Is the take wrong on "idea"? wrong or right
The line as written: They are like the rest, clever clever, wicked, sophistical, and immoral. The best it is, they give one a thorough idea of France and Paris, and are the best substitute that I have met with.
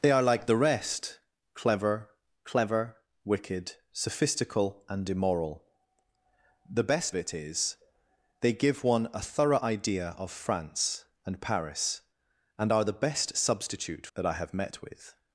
right